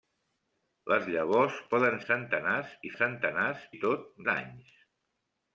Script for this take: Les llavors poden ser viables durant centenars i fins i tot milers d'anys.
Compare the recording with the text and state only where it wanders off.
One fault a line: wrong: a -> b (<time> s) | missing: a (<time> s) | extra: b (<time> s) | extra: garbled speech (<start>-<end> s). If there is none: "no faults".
missing: ser viables durant (2.0 s)
wrong: fins -> centenars (3.0 s)
missing: milers (4.1 s)